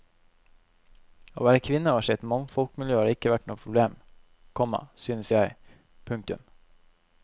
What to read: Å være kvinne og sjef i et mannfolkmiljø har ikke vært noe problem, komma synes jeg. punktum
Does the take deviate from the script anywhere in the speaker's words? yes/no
yes